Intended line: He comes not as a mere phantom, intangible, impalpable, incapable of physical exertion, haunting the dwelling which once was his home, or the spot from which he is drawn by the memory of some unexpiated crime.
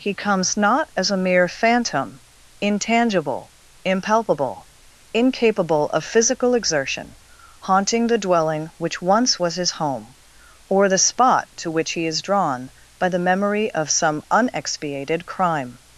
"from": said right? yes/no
no